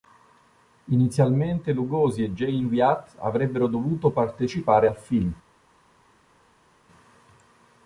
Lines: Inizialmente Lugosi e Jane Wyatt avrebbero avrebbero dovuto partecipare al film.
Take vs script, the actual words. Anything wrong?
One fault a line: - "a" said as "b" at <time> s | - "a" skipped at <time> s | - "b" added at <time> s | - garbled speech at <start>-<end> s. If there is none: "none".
- "avrebbero" skipped at 3.7 s